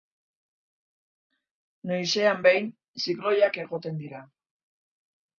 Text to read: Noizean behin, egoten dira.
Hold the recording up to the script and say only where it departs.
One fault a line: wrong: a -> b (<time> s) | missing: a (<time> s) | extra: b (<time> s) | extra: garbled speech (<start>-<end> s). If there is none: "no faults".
extra: zikloiak (3.1 s)